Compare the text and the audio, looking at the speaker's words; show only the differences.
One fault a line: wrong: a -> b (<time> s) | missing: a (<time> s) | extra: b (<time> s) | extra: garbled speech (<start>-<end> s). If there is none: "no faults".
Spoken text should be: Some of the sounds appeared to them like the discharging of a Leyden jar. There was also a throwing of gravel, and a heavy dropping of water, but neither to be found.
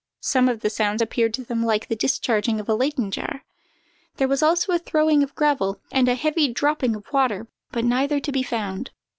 no faults